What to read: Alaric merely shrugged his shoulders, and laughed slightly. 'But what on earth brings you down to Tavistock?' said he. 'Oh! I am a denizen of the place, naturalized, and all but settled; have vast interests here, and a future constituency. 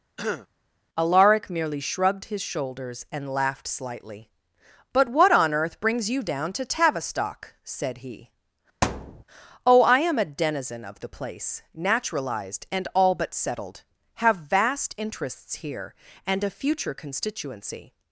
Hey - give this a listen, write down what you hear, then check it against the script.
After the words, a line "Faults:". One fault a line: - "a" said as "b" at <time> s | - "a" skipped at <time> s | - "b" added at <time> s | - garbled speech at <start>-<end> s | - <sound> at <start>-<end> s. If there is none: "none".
Alaric merely shrugged his shoulders, and laughed slightly. 'But what on earth brings you down to Tavistock?' said he. 'Oh! I am a denizen of the place, naturalized, and all but settled; have vast interests here, and a future constituency.
Faults:
- throat clearing at 0.2-0.5 s
- thud at 8.8-9.2 s